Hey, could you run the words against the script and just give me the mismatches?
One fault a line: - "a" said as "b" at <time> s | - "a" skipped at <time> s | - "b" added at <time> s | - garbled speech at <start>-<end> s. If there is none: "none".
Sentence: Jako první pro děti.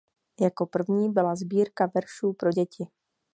- "byla sbírka veršů" added at 1.1 s